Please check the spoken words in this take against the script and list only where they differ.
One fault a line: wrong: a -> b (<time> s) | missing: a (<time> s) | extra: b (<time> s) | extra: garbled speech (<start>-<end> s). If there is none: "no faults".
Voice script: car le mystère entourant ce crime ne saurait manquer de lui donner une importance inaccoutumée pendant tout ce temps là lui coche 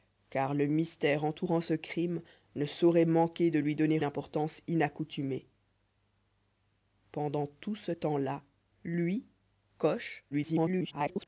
missing: une (4.0 s)
extra: garbled speech (10.3-11.3 s)